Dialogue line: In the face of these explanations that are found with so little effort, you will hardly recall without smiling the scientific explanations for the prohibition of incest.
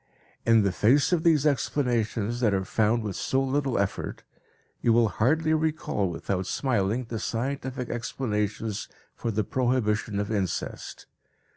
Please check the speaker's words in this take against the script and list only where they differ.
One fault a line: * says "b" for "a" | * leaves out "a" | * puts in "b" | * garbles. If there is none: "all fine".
all fine